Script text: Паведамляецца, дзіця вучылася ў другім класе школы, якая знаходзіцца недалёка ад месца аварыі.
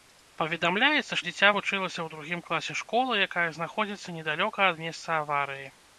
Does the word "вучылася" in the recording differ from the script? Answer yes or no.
no